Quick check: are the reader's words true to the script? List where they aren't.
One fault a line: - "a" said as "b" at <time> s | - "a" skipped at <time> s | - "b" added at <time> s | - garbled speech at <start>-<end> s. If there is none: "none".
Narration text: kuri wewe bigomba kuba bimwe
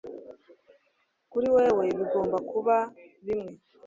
none